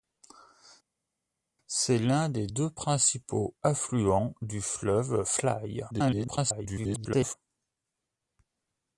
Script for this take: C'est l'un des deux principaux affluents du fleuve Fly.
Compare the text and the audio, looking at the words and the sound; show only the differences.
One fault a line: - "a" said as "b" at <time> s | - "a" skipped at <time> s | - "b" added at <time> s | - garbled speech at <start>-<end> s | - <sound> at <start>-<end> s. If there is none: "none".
- garbled speech at 5.9-7.3 s